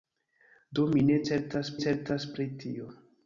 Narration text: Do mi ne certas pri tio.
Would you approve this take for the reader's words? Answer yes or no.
no